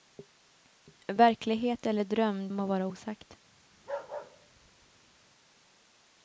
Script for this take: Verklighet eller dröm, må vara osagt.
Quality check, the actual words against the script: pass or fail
pass